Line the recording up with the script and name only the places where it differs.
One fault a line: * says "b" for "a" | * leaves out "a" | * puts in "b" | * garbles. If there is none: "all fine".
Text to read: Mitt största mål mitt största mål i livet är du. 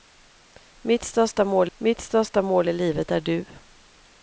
all fine